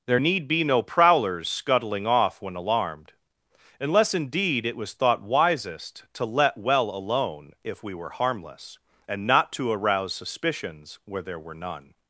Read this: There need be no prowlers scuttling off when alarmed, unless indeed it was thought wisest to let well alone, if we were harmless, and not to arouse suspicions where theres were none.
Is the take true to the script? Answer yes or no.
no